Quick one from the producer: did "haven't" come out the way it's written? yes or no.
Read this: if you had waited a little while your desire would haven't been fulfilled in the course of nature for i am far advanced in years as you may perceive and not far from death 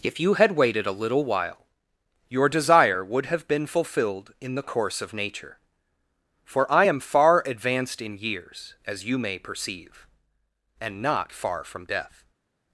no